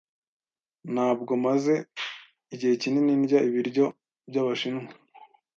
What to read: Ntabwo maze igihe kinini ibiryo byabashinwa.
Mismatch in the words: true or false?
true